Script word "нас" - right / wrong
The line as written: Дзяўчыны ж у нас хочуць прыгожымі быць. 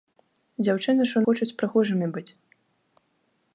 wrong